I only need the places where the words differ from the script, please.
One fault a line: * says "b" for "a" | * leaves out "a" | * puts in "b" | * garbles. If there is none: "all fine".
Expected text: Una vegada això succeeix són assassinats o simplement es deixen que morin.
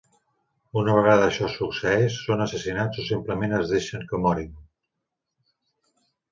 all fine